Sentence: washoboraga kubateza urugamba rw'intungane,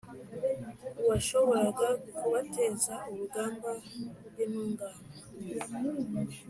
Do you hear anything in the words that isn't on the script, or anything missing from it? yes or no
no